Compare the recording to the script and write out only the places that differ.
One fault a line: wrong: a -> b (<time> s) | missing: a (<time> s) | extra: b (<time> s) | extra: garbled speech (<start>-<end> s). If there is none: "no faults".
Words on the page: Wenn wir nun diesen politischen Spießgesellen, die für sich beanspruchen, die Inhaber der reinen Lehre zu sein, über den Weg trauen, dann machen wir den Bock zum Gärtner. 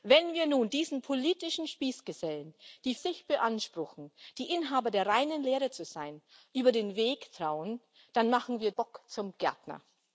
missing: für (3.0 s)
missing: den (8.7 s)